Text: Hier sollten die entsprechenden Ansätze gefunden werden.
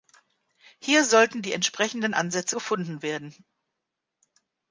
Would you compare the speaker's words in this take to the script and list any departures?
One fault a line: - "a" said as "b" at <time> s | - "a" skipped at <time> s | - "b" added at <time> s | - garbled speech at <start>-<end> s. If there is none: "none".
none